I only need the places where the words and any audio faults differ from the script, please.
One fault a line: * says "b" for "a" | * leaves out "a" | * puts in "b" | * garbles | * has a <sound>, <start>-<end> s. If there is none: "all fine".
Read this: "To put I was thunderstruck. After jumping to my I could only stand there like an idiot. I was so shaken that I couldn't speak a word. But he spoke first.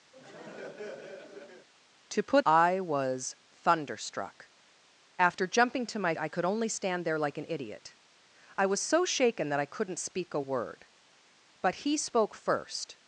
* has a laugh, 0.1-1.7 s